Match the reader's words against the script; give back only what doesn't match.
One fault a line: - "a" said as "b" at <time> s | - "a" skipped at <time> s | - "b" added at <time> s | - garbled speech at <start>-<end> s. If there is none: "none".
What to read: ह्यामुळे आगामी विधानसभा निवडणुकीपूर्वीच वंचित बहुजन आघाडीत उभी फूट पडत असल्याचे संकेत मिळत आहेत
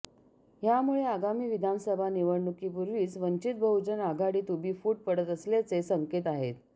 - "मिळत" skipped at 6.3 s